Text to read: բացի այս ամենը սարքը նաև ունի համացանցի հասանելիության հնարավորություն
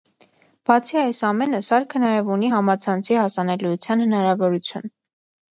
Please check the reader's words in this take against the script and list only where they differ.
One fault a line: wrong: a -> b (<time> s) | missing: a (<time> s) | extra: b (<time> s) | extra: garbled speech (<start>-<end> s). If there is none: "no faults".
no faults